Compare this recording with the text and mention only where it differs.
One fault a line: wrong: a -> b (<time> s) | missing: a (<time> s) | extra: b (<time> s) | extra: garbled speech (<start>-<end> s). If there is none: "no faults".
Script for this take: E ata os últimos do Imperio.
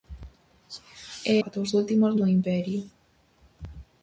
no faults